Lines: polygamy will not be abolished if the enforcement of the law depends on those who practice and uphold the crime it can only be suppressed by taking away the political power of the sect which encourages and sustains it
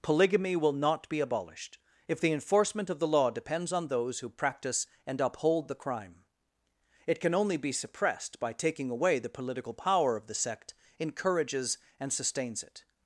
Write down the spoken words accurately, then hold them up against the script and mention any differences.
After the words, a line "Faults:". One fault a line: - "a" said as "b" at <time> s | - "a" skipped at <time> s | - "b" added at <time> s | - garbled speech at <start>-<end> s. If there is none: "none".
polygamy will not be abolished if the enforcement of the law depends on those who practice and uphold the crime it can only be suppressed by taking away the political power of the sect encourages and sustains it
Faults:
- "which" skipped at 10.7 s